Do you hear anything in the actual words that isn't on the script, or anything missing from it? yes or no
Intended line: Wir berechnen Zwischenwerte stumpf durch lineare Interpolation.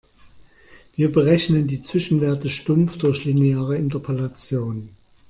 yes